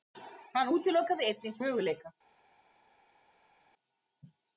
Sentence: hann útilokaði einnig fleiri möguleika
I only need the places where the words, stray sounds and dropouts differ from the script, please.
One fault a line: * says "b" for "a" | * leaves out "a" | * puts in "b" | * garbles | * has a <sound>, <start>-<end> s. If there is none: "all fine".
* leaves out "fleiri"